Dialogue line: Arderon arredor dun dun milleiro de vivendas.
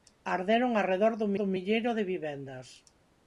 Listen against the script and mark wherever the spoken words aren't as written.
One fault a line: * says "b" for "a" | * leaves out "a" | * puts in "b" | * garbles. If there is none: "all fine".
all fine